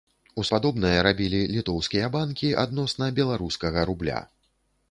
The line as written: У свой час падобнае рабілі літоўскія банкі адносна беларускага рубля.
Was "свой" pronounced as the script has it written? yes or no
no